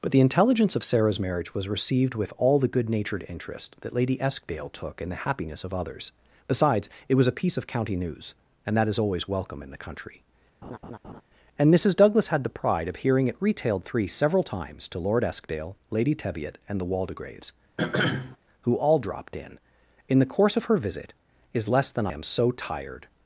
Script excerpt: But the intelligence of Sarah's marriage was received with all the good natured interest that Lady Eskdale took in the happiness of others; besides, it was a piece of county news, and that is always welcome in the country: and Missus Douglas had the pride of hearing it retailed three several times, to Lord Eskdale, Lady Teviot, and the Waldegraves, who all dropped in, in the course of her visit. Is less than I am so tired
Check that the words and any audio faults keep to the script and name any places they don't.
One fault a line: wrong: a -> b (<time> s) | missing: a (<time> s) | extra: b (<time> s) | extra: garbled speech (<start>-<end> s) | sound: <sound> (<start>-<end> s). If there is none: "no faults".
sound: laugh (10.6-11.2 s)
sound: throat clearing (17.8-18.4 s)
missing: I (22.1 s)